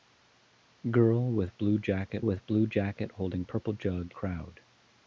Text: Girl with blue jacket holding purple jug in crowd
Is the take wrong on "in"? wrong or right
wrong